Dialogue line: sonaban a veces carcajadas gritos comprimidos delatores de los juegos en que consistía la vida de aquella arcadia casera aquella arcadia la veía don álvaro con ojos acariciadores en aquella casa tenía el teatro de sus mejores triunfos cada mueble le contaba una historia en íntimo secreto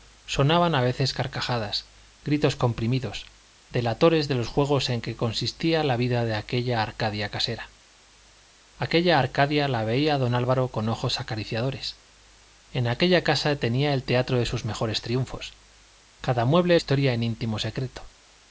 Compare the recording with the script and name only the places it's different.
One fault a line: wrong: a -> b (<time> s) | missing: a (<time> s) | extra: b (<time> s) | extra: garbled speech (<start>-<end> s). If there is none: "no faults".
missing: le contaba una (16.8 s)